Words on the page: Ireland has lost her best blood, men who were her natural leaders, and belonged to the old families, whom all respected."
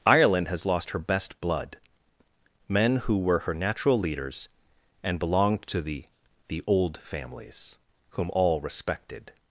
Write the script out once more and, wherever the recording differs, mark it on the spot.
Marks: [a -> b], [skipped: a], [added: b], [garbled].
Ireland has lost her best blood, men who were her natural leaders, and belonged to the [added: the] old families, whom all respected."